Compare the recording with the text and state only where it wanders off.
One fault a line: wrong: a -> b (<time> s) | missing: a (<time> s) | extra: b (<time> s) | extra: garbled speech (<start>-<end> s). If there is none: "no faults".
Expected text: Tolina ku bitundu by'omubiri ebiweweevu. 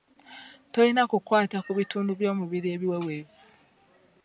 extra: kukwata (1.1 s)